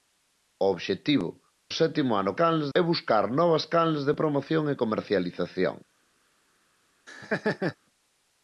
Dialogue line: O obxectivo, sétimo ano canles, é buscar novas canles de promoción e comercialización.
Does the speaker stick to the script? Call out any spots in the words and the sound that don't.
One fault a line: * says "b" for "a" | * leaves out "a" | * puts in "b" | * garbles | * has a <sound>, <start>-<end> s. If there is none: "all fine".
* has a laugh, 7.1-7.8 s